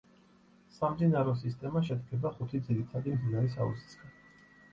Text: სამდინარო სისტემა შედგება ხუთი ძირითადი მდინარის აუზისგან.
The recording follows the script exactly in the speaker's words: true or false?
true